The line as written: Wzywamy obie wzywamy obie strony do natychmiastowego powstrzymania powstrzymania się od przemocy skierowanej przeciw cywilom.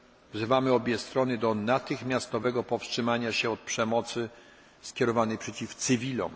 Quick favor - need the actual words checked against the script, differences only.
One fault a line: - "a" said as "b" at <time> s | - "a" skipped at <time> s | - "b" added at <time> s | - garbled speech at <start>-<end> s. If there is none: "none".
- "wzywamy obie" skipped at 1.0 s
- "powstrzymania" skipped at 3.3 s